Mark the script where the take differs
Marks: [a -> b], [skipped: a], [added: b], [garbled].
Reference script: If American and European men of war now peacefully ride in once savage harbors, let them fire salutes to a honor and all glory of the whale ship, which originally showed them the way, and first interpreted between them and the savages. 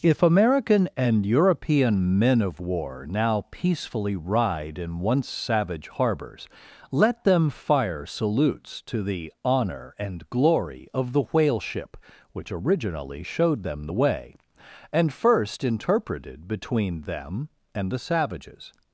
If American and European men of war now peacefully ride in once savage harbors, let them fire salutes to [a -> the] honor and [skipped: all] glory of the whale ship, which originally showed them the way, and first interpreted between them and the savages.